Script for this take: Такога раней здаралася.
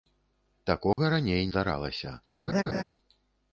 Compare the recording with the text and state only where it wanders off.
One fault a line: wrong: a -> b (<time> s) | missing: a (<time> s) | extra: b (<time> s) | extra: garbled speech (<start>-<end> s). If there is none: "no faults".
no faults